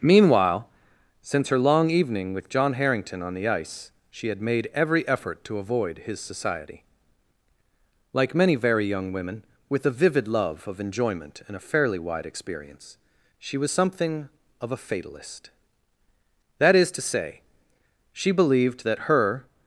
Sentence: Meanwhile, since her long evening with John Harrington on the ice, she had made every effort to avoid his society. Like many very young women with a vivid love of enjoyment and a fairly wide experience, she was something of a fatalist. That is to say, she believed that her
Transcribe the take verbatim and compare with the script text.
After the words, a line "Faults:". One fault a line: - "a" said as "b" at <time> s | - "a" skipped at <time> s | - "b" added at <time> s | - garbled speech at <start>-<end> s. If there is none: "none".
Meanwhile, since her long evening with John Harrington on the ice, she had made every effort to avoid his society. Like many very young women with a vivid love of enjoyment and a fairly wide experience, she was something of a fatalist. That is to say, she believed that her
Faults:
none